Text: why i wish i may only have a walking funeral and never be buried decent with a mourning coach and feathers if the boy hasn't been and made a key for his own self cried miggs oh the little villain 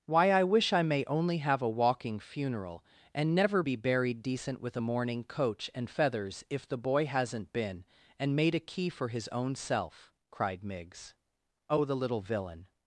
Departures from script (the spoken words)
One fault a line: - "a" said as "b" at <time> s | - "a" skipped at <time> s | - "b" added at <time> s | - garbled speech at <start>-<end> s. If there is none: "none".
none